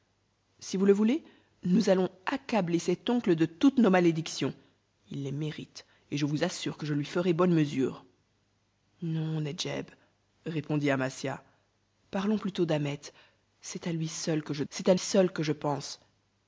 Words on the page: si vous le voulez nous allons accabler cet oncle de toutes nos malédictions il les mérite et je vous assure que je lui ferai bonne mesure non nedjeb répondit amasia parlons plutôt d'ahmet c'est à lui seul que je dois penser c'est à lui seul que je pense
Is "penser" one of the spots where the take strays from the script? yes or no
yes